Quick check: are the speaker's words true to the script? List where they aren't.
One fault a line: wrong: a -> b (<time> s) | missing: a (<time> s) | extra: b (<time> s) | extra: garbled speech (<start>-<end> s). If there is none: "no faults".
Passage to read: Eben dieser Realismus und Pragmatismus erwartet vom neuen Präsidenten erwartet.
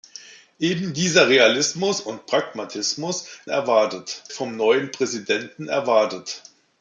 no faults